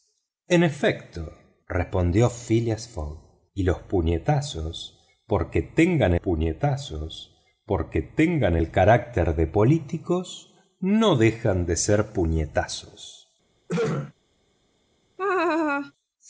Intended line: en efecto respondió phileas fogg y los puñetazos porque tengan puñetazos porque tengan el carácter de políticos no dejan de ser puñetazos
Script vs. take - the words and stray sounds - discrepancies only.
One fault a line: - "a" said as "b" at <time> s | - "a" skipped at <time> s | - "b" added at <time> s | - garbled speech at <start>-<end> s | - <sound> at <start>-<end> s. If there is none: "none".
- throat clearing at 13.7-14.1 s
- laugh at 15.2-15.9 s